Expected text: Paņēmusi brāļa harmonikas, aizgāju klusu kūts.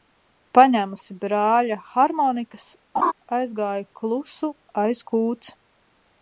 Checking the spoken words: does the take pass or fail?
fail